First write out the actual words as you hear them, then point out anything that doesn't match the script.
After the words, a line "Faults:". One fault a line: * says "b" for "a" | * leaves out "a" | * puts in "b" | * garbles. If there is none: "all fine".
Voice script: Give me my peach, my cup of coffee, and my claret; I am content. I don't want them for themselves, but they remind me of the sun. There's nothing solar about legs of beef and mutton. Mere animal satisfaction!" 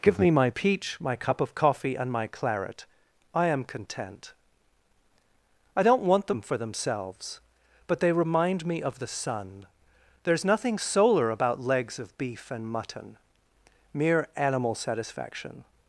Give me my peach, my cup of coffee, and my claret; I am content. I don't want them for themselves, but they remind me of the sun. There's nothing solar about legs of beef and mutton. Mere animal satisfaction!"
Faults:
all fine